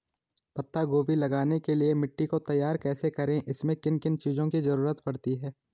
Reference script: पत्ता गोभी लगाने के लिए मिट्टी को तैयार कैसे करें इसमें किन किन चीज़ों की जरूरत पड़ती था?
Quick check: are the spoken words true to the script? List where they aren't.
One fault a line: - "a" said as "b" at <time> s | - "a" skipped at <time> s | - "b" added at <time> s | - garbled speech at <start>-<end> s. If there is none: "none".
- "था" said as "है" at 5.3 s